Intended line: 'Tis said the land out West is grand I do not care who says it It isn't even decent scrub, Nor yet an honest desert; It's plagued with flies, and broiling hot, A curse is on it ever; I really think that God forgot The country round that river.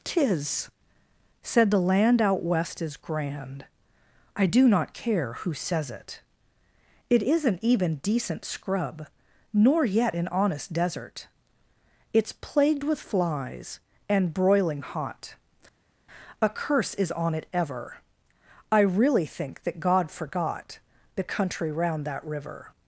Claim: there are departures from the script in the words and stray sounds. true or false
false